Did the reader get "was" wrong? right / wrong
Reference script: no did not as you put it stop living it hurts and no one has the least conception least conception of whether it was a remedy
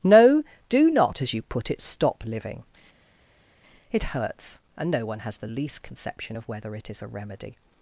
wrong